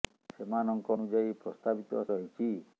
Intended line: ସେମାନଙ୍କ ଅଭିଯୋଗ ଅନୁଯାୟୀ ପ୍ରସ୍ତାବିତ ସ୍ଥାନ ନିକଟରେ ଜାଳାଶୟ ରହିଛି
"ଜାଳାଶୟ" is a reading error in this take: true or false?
true